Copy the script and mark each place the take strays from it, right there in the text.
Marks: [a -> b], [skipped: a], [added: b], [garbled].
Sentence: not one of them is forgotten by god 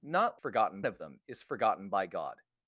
not [one -> forgotten] of them is forgotten by god